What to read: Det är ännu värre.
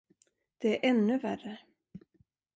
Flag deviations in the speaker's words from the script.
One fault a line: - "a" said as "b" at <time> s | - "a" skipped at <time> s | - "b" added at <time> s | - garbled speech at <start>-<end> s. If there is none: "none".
none